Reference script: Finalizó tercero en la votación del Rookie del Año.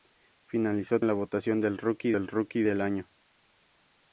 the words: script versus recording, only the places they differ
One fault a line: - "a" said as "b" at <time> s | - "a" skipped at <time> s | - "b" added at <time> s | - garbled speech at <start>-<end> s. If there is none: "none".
- "tercero" skipped at 1.0 s
- "Rookie del" added at 2.3 s